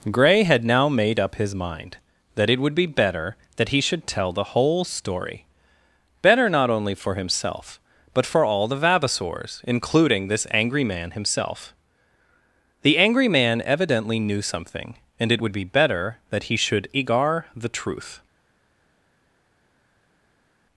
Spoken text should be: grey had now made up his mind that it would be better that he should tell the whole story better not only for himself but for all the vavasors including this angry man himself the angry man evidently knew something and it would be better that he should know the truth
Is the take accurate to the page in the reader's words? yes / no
no